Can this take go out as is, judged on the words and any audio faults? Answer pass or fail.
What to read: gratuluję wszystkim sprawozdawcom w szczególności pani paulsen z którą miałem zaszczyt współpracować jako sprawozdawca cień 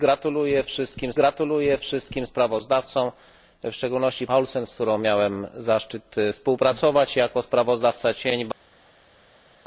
fail